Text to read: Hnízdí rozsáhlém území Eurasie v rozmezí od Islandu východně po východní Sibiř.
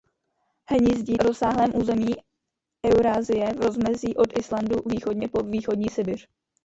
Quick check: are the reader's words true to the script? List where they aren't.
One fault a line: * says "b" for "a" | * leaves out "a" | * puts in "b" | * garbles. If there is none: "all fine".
all fine